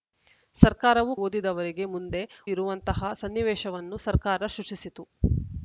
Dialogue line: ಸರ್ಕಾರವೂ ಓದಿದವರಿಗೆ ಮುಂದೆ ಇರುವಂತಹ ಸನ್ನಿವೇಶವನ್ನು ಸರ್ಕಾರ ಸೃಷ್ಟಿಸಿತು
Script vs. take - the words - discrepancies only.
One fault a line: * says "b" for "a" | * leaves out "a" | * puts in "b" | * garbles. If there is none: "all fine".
all fine